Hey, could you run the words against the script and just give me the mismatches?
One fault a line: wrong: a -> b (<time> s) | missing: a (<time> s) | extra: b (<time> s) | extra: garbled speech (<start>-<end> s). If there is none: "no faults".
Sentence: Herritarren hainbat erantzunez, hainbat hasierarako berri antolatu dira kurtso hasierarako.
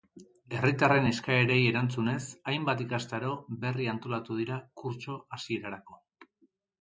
wrong: hainbat -> eskaerei (1.1 s)
wrong: hasierarako -> ikastaro (2.9 s)